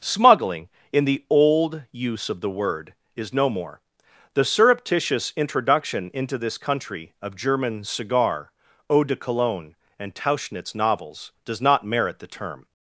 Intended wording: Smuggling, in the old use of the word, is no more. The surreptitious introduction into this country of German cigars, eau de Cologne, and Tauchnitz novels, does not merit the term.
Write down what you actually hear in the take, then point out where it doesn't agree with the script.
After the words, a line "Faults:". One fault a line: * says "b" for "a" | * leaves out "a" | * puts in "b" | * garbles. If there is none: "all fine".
Smuggling, in the old use of the word, is no more. The surreptitious introduction into this country of German cigar, eau de Cologne, and Tauchnitz novels, does not merit the term.
Faults:
* says "cigar" for "cigars"